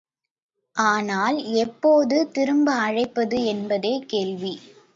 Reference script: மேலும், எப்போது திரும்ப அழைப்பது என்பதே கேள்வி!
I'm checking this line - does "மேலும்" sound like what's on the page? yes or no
no